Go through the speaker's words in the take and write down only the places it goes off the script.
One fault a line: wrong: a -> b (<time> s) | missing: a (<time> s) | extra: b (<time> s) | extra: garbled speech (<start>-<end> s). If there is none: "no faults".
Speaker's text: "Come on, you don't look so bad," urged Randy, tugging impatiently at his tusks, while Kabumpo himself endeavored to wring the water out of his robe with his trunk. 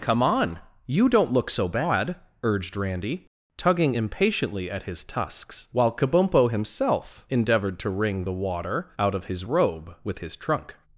no faults